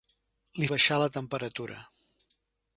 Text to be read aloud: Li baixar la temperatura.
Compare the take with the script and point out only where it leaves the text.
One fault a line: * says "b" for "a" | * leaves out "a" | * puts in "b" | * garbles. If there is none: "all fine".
all fine